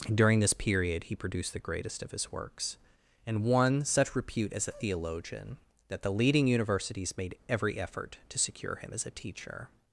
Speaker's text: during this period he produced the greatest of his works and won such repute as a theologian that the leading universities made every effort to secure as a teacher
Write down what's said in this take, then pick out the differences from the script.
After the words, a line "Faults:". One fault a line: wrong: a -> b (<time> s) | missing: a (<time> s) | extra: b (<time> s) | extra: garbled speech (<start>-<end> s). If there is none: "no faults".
during this period he produced the greatest of his works and won such repute as a theologian that the leading universities made every effort to secure him as a teacher
Faults:
extra: him (8.8 s)